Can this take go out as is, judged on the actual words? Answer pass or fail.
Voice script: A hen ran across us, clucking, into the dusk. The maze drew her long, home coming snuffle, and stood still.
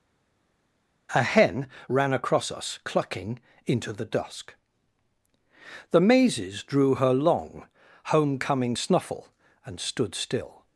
fail